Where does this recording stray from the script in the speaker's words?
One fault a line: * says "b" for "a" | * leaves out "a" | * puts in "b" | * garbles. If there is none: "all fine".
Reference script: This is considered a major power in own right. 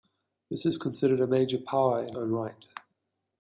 all fine